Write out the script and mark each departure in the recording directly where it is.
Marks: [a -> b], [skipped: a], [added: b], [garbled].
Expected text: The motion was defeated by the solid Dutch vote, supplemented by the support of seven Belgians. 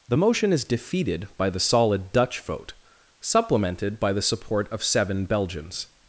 The motion [was -> is] defeated by the solid Dutch vote, supplemented by the support of seven Belgians.